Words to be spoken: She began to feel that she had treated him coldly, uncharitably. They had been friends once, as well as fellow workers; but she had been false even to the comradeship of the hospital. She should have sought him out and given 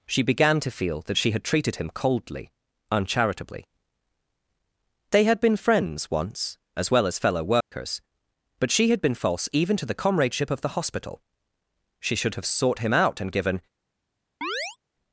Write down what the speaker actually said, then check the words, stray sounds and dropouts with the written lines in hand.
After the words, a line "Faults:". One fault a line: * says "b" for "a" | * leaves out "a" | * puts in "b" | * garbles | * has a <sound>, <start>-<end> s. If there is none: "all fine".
She began to feel that she had treated him coldly, uncharitably. They had been friends once, as well as fellow workers; but she had been false even to the comradeship of the hospital. She should have sought him out and given
Faults:
* has a dropout, 7.6-7.7 s
* has a chirp, 14.4-14.8 s